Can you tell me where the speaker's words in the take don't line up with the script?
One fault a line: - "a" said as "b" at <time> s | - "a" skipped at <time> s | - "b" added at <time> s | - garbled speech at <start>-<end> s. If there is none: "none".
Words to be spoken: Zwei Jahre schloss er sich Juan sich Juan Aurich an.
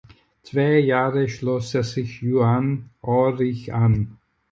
- "sich Juan" skipped at 2.9 s